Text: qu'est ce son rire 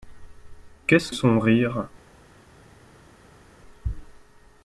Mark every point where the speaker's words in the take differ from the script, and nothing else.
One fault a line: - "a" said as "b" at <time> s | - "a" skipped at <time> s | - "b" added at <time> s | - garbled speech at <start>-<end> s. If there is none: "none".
none